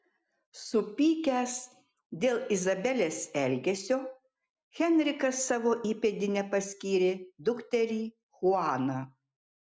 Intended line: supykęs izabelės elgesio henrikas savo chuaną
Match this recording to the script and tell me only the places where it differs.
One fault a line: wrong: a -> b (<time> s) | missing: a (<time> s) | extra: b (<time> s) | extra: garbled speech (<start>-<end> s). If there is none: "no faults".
extra: dėl (2.2 s)
extra: įpėdine paskyrė dukterį (5.9 s)